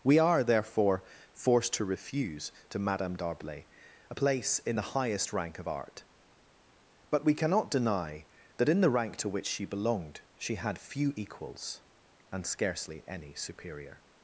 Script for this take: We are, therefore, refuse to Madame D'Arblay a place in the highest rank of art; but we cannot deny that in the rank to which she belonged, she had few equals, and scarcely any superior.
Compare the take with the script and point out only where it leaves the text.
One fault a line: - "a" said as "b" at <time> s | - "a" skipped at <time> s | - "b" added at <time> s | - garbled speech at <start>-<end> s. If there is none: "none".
- "forced to" added at 1.3 s